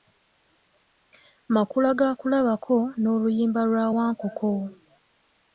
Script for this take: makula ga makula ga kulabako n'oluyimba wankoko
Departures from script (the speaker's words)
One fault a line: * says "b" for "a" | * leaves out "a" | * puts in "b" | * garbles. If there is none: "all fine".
* leaves out "makula ga"
* puts in "lwa"